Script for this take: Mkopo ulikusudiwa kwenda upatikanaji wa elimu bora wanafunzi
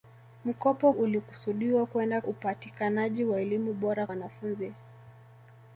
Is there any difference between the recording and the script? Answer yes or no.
no